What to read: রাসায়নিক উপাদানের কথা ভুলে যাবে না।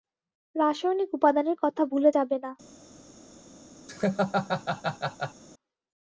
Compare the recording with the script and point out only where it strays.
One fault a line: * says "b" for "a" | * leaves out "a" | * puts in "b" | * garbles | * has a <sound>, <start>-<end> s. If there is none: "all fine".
* has a laugh, 3.9-5.4 s